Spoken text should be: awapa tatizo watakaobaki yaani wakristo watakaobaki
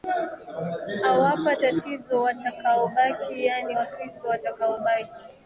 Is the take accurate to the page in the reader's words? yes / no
yes